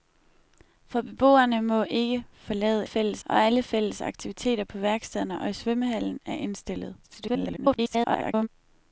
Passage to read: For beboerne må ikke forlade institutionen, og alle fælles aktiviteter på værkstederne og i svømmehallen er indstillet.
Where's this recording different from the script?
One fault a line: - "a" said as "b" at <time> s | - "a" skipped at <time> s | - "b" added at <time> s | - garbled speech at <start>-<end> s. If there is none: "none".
- "institutionen" said as "fælles" at 2.8 s
- garbled speech at 7.0-8.5 s